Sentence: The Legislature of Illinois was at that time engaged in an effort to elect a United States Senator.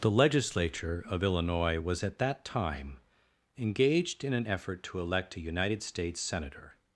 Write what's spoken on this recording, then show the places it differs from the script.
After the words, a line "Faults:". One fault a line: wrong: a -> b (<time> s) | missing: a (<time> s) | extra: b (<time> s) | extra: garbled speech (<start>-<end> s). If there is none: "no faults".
The Legislature of Illinois was at that time engaged in an effort to elect a United States Senator.
Faults:
no faults